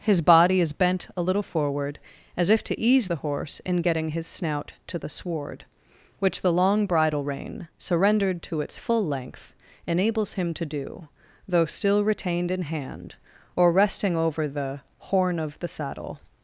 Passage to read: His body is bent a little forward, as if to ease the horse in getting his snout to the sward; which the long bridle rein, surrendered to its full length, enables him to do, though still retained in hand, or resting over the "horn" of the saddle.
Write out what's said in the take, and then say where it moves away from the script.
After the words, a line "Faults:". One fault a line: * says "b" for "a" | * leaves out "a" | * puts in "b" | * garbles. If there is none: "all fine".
His body is bent a little forward, as if to ease the horse in getting his snout to the sward; which the long bridle rein, surrendered to its full length, enables him to do, though still retained in hand, or resting over the "horn" of the saddle.
Faults:
all fine